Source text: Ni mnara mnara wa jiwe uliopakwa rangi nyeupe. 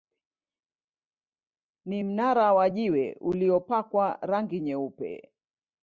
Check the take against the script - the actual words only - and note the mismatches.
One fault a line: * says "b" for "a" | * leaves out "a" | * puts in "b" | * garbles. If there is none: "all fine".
* leaves out "mnara"